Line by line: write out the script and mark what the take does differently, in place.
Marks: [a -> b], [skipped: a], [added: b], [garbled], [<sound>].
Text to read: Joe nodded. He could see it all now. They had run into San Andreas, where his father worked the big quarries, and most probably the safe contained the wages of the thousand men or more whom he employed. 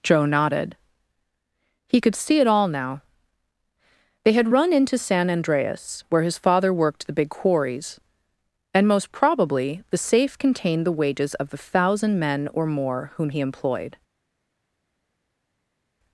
Joe nodded. He could see it all now. They had run into San Andreas, where his father worked the big quarries, and most probably the safe contained the wages of the thousand men or more whom he employed.